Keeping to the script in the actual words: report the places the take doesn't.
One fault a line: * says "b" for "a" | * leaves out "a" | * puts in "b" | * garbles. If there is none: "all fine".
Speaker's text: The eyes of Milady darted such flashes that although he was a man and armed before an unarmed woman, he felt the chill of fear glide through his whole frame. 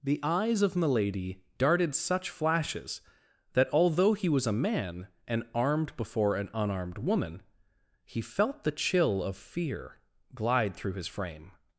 * leaves out "whole"